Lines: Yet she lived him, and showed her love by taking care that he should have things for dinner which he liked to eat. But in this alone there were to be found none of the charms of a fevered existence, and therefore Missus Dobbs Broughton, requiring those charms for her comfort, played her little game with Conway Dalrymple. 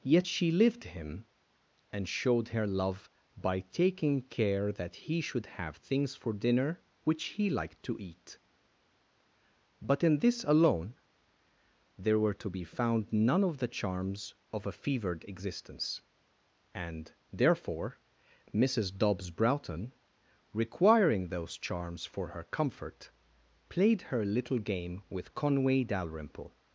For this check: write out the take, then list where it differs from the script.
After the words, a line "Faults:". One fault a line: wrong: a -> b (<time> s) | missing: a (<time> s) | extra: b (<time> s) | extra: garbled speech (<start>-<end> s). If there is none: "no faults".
Yet she lived him, and showed her love by taking care that he should have things for dinner which he liked to eat. But in this alone there were to be found none of the charms of a fevered existence, and therefore Missus Dobbs Broughton, requiring those charms for her comfort, played her little game with Conway Dalrymple.
Faults:
no faults